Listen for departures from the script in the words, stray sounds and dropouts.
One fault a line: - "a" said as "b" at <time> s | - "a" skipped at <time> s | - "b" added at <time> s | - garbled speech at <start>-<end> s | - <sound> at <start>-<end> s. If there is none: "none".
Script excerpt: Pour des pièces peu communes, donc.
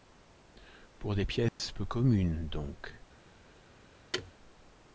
- dropout at 1.5-1.6 s
- thud at 4.1-4.3 s